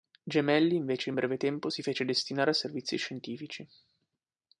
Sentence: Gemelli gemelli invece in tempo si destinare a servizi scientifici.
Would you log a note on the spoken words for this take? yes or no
yes